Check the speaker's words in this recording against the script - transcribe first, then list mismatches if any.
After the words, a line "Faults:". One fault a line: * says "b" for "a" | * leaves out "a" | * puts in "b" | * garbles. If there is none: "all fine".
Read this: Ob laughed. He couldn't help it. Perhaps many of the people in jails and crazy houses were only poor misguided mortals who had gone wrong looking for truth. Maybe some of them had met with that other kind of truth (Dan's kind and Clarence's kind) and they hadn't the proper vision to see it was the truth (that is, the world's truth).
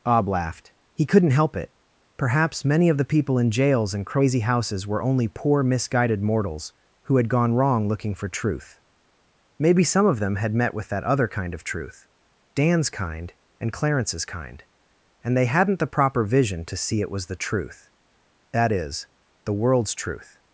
Ob laughed. He couldn't help it. Perhaps many of the people in jails and crazy houses were only poor misguided mortals who had gone wrong looking for truth. Maybe some of them had met with that other kind of truth (Dan's kind and Clarence's kind) and they hadn't the proper vision to see it was the truth (that is, the world's truth).
Faults:
all fine